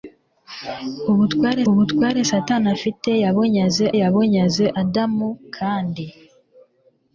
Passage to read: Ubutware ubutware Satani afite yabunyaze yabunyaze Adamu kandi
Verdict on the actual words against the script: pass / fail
pass